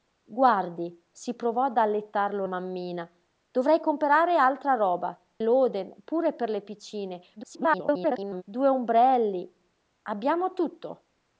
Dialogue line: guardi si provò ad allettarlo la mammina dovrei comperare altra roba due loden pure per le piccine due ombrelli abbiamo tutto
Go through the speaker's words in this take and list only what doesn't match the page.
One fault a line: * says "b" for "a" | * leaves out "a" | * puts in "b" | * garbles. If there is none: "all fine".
* leaves out "la"
* leaves out "due"
* garbles